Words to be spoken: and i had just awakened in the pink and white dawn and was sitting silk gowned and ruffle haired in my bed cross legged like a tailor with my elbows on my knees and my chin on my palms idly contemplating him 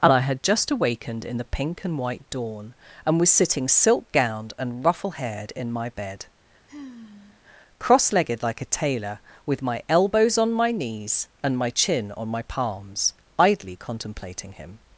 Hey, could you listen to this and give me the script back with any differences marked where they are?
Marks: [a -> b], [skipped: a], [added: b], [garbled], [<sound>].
and i had just awakened in the pink and white dawn and was sitting silk gowned and ruffle haired in my bed [sigh] cross legged like a tailor with my elbows on my knees and my chin on my palms idly contemplating him